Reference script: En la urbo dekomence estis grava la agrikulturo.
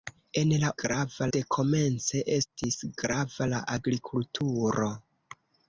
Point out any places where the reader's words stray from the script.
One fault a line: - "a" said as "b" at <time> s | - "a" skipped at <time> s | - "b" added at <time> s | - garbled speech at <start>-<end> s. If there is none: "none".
- "urbo" said as "grava" at 0.8 s